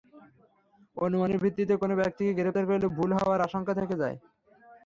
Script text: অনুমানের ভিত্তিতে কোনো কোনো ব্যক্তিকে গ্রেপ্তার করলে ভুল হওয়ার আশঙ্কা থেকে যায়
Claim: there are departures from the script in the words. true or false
true